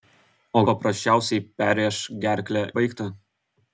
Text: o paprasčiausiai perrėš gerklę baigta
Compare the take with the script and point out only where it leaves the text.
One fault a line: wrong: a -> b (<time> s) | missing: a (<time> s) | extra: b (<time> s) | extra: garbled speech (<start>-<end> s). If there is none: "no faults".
no faults